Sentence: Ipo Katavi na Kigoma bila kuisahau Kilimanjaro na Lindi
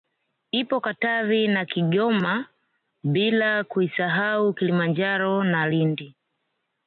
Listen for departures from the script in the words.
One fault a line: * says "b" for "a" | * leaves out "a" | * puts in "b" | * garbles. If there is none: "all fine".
all fine